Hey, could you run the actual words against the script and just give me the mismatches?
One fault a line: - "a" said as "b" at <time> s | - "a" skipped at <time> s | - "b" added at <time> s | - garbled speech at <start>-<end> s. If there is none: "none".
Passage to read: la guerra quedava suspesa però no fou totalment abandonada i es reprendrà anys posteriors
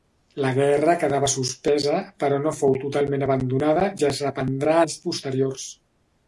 none